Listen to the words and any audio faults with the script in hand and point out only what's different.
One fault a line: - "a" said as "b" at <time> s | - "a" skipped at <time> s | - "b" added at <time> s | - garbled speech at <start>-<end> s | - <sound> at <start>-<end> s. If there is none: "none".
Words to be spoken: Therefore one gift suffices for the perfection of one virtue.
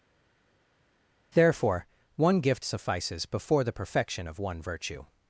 - "for" said as "before" at 3.2 s